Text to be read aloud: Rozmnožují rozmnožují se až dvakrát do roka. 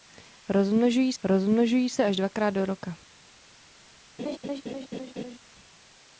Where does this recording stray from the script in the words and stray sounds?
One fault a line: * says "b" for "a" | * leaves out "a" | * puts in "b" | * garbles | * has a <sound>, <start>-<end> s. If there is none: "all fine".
* has a laugh, 4.2-5.4 s